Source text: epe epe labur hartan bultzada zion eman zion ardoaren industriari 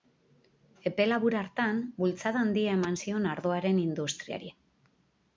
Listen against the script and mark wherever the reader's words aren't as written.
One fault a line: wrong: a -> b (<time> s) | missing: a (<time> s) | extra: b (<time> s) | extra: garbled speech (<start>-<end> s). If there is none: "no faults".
missing: epe (1.0 s)
wrong: zion -> handia (2.5 s)